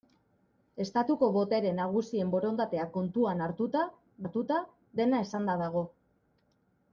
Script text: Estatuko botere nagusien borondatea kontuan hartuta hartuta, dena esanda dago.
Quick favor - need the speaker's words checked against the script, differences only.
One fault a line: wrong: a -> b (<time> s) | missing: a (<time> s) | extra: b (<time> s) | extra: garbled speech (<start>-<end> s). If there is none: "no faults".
no faults